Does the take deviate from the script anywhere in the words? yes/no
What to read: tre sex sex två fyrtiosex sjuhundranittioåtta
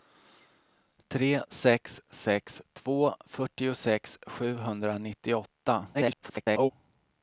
yes